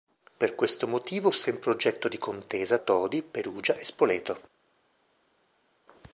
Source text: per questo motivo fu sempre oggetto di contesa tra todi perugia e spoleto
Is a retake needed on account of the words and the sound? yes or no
yes